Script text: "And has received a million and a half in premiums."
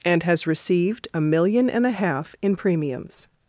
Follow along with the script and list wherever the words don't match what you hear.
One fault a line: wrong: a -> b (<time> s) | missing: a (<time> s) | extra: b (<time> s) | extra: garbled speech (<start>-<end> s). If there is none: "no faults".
no faults